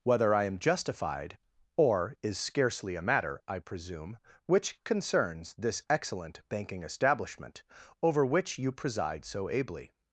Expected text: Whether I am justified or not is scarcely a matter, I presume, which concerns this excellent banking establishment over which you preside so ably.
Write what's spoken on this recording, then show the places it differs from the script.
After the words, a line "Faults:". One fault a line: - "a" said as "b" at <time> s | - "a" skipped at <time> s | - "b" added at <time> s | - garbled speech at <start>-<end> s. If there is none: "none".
Whether I am justified or is scarcely a matter, I presume, which concerns this excellent banking establishment over which you preside so ably.
Faults:
- "not" skipped at 2.1 s